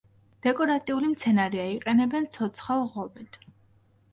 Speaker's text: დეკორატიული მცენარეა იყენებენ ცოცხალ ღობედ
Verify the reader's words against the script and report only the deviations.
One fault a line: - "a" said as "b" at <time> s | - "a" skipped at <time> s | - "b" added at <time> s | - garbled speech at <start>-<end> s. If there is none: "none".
none